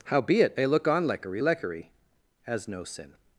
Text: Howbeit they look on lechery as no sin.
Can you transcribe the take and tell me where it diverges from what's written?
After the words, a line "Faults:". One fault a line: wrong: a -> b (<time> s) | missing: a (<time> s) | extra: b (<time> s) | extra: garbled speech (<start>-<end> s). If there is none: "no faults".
Howbeit they look on lechery lechery as no sin.
Faults:
extra: lechery (1.4 s)